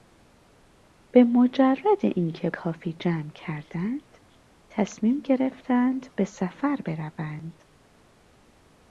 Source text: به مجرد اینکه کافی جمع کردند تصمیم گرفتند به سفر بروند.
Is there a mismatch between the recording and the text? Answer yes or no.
no